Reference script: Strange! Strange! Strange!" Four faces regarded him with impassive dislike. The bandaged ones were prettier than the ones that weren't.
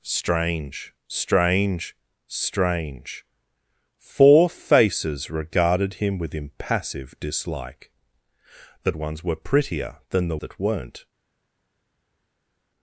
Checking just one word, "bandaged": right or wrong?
wrong